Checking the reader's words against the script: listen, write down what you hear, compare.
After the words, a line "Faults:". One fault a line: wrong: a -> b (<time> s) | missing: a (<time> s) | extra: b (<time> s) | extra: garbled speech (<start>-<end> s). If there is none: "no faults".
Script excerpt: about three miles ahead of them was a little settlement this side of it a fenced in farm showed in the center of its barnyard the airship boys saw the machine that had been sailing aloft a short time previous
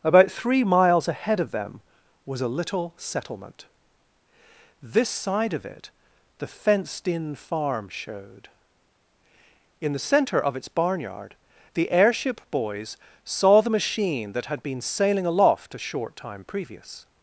about three miles ahead of them was a little settlement this side of it the fenced in farm showed in the center of its barnyard the airship boys saw the machine that had been sailing aloft a short time previous
Faults:
wrong: a -> the (6.4 s)